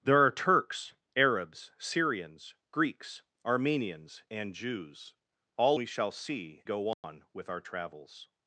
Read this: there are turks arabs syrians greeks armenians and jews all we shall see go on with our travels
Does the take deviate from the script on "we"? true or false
false